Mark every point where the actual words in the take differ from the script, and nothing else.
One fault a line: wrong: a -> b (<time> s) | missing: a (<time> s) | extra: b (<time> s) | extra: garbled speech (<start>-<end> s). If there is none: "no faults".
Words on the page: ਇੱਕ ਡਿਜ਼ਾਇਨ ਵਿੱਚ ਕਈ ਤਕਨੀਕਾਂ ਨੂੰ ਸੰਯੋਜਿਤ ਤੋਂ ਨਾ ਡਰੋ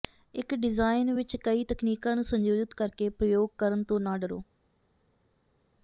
extra: ਕਰਕੇ ਪ੍ਰਯੋਗ ਕਰਨ (2.7 s)